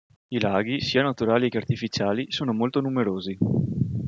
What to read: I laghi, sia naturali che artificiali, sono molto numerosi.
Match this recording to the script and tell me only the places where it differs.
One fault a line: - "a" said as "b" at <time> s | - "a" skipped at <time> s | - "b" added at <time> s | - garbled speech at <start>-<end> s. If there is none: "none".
none